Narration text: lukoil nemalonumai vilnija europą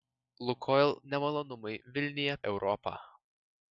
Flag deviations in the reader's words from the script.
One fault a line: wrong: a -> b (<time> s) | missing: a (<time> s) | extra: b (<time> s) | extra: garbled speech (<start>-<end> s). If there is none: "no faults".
no faults